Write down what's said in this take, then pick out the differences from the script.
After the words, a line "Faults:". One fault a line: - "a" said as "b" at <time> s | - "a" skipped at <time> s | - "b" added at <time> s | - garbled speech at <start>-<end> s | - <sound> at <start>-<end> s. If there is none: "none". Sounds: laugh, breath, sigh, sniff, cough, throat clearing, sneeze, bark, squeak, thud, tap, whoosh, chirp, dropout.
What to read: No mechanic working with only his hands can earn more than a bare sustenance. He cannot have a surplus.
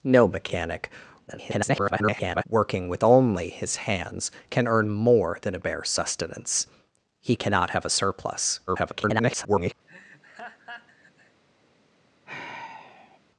No mechanic [garbled] working with only his hands can earn more than a bare sustenance. He cannot have a surplus. [garbled]
Faults:
- garbled speech at 1.3-2.4 s
- garbled speech at 8.7-9.7 s
- laugh at 9.9-11.4 s
- sigh at 12.3-13.2 s